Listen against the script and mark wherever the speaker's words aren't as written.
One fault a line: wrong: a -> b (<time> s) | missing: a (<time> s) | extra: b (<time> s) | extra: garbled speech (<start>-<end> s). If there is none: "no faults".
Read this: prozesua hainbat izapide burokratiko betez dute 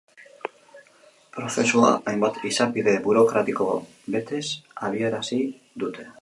extra: abiarazi (4.9 s)